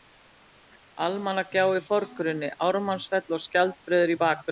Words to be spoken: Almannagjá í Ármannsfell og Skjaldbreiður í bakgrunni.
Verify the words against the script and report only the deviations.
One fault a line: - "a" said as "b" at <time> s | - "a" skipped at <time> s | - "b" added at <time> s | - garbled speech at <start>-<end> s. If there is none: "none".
- "forgrunni" added at 1.9 s